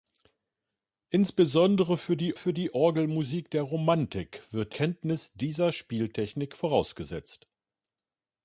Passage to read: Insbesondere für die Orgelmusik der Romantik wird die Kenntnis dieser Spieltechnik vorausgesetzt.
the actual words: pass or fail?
fail